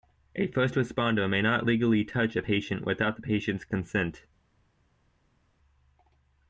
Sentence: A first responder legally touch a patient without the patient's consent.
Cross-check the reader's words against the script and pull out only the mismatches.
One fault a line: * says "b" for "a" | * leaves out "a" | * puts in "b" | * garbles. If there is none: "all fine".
* puts in "may not"